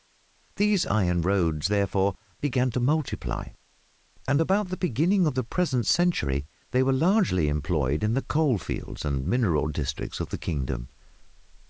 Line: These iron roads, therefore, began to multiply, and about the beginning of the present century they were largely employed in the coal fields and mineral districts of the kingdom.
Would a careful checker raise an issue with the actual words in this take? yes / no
no